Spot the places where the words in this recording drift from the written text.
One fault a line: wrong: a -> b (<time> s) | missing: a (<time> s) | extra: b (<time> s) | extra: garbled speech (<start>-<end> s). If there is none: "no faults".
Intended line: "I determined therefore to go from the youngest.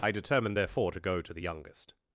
wrong: from -> to (1.2 s)